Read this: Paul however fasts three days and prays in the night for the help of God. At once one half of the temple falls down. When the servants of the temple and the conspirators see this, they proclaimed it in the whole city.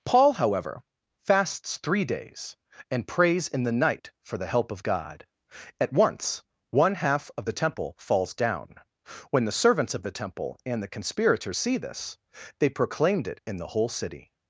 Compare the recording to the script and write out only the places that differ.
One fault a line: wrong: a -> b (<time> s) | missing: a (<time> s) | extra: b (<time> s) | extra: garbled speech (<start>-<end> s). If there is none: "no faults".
no faults